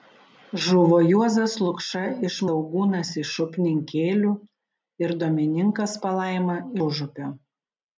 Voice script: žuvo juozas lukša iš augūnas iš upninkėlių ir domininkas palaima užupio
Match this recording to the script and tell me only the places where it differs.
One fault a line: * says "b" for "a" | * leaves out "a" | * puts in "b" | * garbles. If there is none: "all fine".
all fine